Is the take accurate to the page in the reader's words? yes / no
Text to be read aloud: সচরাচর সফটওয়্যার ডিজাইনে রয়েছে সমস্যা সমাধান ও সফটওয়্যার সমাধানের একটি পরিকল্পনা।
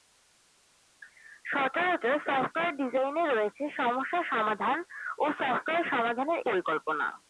no